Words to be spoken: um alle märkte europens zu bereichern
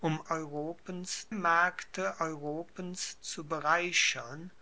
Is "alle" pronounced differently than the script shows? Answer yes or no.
yes